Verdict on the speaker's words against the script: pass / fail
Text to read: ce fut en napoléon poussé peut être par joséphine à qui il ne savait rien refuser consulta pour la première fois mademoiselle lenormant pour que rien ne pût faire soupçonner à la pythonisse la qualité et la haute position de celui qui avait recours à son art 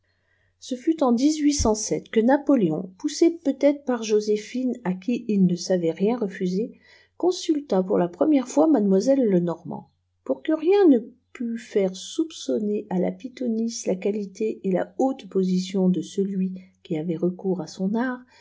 fail